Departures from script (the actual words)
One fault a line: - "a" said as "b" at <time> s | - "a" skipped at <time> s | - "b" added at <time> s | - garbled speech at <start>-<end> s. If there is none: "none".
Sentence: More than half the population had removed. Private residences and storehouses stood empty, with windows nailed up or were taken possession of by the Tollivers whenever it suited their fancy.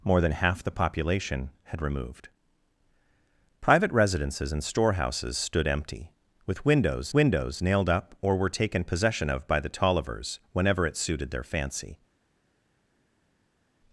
- "windows" added at 7.1 s